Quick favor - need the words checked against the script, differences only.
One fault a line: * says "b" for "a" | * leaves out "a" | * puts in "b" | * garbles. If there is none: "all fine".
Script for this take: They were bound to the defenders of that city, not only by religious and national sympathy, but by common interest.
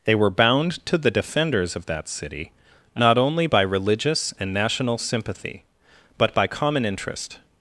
all fine